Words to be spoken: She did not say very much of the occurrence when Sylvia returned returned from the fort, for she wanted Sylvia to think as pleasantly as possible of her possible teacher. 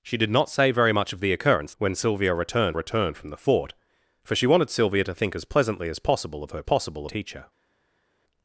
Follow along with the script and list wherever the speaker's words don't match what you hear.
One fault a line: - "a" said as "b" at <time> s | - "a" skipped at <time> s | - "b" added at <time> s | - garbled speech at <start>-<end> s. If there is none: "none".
none